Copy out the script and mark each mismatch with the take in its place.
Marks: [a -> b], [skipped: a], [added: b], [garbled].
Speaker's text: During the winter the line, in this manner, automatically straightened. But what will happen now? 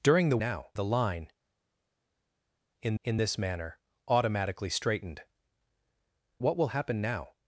During the [winter -> now] the line, in [added: in] this manner, automatically straightened. [skipped: But] what will happen now?